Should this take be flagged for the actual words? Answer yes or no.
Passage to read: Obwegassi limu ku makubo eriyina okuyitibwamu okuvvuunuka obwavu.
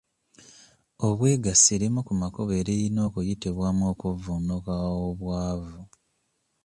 no